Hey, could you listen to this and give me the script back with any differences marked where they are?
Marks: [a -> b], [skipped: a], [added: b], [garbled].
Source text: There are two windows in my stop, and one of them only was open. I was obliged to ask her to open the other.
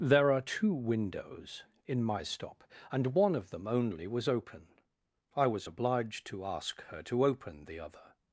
There are two windows in my stop, and one of them only was open. I was obliged to ask her to open the other.